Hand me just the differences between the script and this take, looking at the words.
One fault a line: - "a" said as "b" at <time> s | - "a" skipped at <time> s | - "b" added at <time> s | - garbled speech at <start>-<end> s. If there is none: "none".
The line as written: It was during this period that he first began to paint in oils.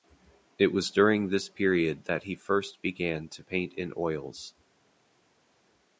none